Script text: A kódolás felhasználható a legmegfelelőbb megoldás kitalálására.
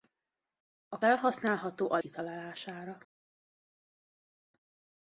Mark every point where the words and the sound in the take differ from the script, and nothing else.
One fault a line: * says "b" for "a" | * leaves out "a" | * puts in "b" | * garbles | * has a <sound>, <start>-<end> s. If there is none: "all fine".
* leaves out "kódolás"
* leaves out "legmegfelelőbb megoldás"